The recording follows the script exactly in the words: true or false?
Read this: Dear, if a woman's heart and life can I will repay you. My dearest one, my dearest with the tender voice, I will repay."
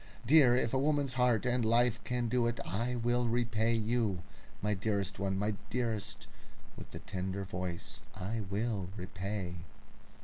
false